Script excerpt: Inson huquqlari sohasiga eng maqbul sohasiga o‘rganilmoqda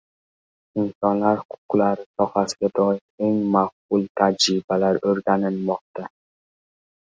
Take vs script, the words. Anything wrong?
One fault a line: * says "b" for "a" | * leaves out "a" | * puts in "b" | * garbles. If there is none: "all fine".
* puts in "doir"
* says "tajribalar" for "sohasiga"